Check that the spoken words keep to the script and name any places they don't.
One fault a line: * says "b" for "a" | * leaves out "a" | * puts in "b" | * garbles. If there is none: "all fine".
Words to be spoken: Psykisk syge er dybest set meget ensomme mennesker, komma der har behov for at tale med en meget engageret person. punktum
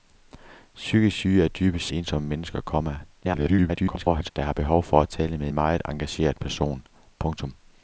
* leaves out "set meget"
* garbles
* leaves out "en"